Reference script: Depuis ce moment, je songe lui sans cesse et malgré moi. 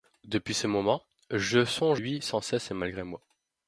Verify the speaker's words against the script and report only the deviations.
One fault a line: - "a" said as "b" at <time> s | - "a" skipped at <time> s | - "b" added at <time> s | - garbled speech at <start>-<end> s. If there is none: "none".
none